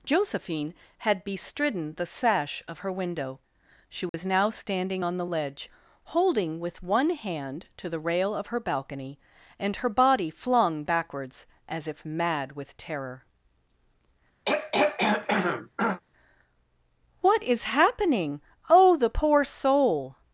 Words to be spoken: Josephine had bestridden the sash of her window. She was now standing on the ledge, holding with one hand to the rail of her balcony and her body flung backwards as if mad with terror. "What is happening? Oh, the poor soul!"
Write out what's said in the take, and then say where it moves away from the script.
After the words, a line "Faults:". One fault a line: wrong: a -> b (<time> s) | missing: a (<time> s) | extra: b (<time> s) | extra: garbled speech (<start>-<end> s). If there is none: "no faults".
Josephine had bestridden the sash of her window. She was now standing on the ledge, holding with one hand to the rail of her balcony and her body flung backwards as if mad with terror. "What is happening? Oh, the poor soul!"
Faults:
no faults